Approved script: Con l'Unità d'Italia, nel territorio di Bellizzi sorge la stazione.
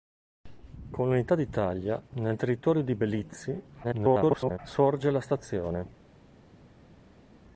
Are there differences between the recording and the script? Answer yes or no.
yes